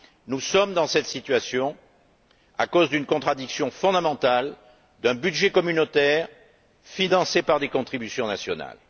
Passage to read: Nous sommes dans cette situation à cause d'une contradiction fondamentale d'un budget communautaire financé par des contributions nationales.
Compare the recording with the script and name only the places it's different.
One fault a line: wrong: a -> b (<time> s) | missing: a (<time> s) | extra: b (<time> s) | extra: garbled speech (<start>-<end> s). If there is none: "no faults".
no faults